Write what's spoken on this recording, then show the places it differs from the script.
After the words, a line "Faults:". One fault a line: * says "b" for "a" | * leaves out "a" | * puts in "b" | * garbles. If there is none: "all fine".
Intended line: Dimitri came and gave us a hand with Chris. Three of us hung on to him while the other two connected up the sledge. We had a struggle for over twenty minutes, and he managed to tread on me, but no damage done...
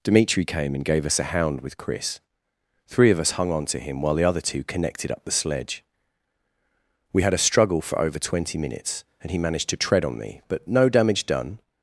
Dimitri came and gave us a hound with Chris. Three of us hung on to him while the other two connected up the sledge. We had a struggle for over twenty minutes, and he managed to tread on me, but no damage done...
Faults:
* says "hound" for "hand"